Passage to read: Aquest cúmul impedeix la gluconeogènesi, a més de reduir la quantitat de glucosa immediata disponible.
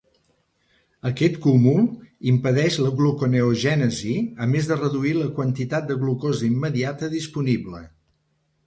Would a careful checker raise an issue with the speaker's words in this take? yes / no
no